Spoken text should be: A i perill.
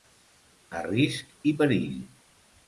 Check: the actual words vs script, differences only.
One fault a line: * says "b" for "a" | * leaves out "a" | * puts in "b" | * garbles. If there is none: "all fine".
* puts in "risc"